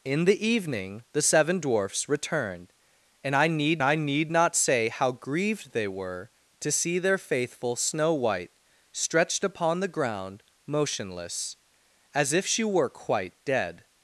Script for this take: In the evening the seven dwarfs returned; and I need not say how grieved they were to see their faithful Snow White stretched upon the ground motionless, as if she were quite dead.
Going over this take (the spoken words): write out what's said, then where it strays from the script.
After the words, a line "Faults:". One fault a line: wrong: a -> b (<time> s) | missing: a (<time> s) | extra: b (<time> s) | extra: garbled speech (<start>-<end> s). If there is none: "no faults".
In the evening the seven dwarfs returned; and I need I need not say how grieved they were to see their faithful Snow White stretched upon the ground motionless, as if she were quite dead.
Faults:
extra: I need (3.8 s)